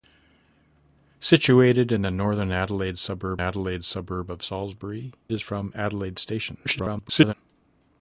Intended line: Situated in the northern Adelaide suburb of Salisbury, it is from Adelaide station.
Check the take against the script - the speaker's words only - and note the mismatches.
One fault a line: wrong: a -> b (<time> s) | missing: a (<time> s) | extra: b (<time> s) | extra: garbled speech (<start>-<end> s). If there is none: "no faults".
extra: Adelaide suburb (3.4 s)
missing: it (5.1 s)
extra: garbled speech (6.6-7.3 s)